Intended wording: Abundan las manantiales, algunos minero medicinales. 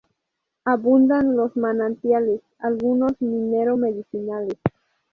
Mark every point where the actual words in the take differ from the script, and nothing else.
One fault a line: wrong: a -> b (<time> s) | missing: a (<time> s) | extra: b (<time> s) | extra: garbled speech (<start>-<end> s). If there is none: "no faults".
wrong: las -> los (1.4 s)